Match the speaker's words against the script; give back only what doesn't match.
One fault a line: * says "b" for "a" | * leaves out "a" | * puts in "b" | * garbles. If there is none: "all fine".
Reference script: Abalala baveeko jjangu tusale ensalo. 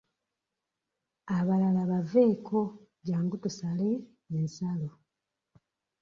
all fine